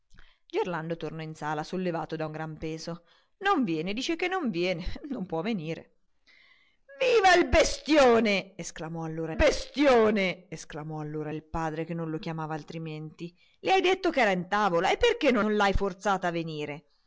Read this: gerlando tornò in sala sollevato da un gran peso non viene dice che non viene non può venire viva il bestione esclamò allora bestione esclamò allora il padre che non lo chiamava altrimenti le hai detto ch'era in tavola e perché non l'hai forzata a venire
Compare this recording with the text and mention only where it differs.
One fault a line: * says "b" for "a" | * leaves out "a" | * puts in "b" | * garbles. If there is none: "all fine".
all fine